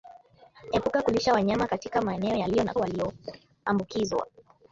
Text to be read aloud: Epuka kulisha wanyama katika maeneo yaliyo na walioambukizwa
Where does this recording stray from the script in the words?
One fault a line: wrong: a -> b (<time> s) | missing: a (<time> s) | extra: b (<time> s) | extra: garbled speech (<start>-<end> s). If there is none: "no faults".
no faults